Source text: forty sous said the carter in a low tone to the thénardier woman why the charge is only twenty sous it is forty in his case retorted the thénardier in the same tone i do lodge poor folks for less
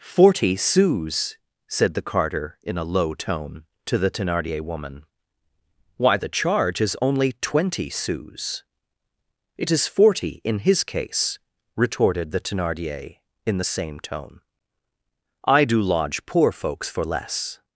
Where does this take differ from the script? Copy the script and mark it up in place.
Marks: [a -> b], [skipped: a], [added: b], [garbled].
forty sous said the carter in a low tone to the thénardier woman why the charge is only twenty sous it is forty in his case retorted the thénardier in the same tone i do lodge poor folks for less